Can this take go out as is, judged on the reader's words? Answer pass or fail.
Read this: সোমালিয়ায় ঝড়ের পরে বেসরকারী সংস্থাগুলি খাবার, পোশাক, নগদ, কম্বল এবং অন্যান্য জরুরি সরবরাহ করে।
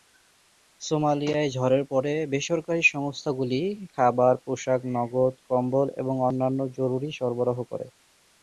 pass